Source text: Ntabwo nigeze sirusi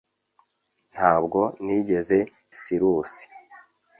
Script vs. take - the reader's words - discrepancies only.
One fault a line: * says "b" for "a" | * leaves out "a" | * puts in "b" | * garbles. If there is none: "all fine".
all fine